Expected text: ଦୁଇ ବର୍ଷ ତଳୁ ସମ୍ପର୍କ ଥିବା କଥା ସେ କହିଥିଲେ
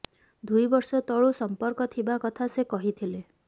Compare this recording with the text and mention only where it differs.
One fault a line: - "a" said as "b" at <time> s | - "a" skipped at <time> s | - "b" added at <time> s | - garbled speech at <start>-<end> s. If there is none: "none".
none